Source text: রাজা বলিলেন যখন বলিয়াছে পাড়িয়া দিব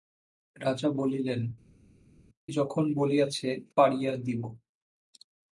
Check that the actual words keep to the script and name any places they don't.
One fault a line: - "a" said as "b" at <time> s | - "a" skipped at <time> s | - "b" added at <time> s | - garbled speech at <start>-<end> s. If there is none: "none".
none